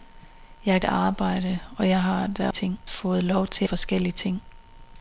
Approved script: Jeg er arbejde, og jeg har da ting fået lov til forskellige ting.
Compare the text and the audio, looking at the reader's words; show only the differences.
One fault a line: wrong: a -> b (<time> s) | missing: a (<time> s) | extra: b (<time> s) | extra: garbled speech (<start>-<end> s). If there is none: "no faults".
no faults